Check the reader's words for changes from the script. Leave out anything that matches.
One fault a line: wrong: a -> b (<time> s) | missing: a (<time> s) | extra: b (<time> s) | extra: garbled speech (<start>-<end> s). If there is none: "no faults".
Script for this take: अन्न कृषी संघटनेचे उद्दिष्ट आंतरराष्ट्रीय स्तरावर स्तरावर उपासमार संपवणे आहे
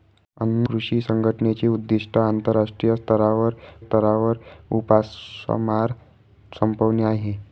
no faults